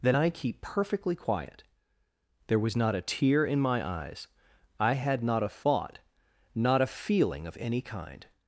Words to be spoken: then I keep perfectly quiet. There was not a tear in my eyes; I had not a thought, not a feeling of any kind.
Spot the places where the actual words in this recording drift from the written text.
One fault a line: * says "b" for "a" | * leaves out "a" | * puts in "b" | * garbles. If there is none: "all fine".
all fine